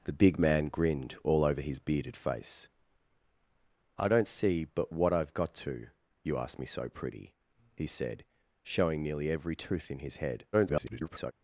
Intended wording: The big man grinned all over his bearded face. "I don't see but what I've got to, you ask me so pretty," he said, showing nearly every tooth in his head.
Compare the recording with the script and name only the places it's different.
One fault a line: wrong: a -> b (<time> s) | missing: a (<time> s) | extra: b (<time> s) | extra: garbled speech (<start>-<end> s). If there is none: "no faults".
extra: garbled speech (10.5-11.3 s)